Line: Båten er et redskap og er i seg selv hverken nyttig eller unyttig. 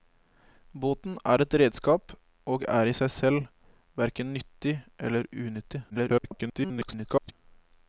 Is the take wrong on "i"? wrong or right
right